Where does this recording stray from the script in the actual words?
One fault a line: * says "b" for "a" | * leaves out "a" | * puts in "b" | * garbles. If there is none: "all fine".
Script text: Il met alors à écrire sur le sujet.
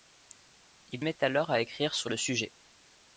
all fine